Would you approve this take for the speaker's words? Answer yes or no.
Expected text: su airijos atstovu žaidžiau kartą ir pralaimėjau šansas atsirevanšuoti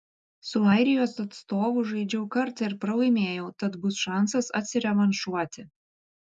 no